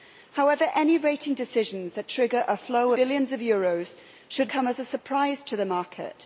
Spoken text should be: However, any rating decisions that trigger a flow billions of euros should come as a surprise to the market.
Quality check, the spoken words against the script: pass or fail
pass